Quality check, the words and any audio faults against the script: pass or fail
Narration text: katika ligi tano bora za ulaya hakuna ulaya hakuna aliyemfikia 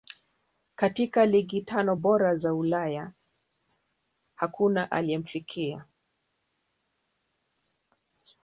fail